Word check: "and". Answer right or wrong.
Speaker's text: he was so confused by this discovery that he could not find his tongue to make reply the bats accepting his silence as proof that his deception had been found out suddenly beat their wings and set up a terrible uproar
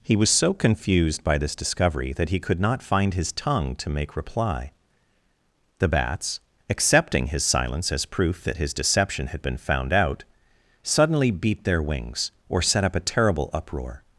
wrong